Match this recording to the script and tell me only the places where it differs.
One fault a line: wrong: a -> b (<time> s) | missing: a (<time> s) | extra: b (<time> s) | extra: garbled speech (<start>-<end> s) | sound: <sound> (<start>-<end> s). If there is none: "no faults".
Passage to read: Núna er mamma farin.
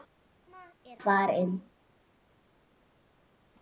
missing: mamma (1.0 s)